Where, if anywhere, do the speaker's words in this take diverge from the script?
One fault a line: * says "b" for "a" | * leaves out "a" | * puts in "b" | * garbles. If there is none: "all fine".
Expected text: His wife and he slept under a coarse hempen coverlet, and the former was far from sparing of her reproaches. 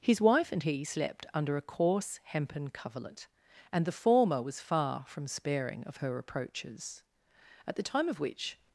* puts in "At the time of which"